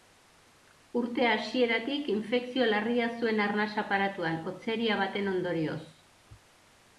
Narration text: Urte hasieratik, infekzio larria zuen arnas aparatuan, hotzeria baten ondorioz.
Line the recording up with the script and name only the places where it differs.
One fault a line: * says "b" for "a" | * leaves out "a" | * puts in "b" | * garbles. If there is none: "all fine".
all fine